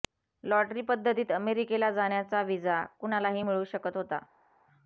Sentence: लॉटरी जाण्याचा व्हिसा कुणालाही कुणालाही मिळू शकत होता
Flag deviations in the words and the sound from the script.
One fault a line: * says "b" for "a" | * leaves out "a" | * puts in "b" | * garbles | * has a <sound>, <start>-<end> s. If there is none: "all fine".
* puts in "पद्धतीत अमेरिकेला"
* leaves out "कुणालाही"